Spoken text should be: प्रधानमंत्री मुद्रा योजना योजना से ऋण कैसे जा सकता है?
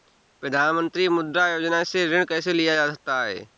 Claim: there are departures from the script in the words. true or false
true